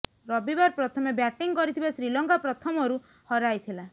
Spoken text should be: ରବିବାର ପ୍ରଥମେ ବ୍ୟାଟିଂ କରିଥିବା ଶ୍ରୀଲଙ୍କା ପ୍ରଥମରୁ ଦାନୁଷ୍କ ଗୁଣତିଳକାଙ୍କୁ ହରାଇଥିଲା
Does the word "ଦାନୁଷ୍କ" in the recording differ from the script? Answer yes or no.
yes